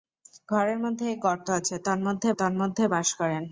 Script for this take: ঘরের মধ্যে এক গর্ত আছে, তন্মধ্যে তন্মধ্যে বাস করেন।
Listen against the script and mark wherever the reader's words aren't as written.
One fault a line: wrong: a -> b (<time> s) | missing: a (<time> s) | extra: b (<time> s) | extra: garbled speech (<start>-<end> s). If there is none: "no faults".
no faults